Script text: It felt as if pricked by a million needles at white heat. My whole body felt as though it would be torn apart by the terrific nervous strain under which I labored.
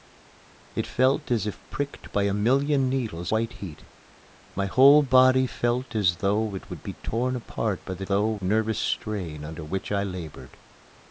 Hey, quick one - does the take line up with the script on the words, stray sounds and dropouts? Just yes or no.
no